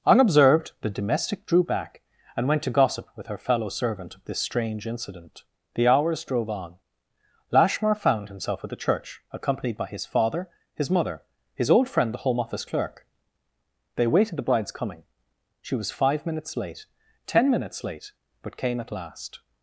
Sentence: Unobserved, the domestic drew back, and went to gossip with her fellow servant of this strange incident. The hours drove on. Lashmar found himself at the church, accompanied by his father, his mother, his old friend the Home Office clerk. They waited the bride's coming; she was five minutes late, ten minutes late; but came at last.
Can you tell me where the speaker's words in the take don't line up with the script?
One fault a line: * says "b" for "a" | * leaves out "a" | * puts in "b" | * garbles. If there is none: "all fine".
all fine